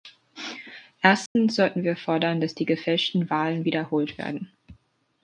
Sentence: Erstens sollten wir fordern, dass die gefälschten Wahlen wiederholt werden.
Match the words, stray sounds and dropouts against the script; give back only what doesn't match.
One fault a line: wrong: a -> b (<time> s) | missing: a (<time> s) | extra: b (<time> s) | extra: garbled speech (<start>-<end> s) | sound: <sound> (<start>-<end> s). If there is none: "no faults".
sound: dropout (1.3-1.4 s)